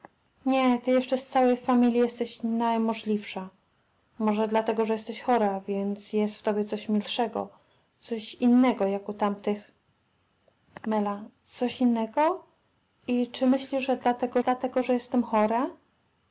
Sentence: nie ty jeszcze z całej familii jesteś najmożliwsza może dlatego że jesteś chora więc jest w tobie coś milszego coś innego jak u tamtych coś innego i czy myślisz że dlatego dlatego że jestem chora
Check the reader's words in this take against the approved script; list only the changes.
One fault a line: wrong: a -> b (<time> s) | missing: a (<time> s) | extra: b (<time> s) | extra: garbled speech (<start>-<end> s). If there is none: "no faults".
no faults